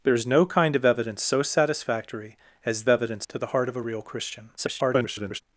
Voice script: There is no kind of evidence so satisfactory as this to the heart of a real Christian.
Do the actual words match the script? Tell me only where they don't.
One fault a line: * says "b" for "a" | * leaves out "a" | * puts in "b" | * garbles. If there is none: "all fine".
* says "evidence" for "this"
* garbles